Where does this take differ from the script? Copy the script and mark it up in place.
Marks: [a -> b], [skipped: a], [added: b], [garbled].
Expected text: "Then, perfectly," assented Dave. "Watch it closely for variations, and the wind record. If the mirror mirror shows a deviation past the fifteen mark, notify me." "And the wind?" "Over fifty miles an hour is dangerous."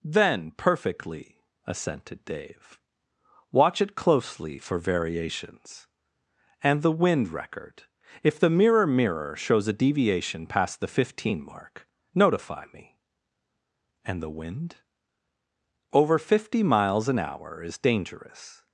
"Then, perfectly," assented Dave. "Watch it closely for variations, and the wind record. If the mirror mirror shows a deviation past the fifteen mark, notify me." "And the wind?" "Over fifty miles an hour is dangerous."